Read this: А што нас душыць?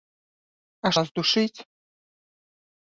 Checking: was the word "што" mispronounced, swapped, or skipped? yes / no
yes